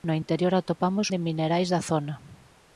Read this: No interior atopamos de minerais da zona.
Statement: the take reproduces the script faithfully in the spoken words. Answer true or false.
true